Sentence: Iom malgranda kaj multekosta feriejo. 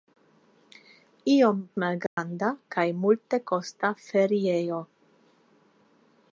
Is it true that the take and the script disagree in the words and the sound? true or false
true